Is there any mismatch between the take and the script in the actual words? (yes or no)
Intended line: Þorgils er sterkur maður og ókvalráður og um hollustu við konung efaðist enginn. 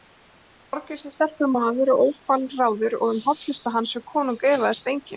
yes